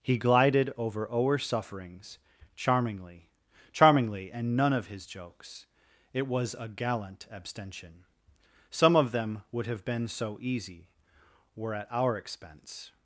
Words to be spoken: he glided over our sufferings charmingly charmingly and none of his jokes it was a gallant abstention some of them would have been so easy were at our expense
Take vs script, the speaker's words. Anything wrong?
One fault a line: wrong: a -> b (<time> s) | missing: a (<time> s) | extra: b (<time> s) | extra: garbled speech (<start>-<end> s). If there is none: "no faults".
no faults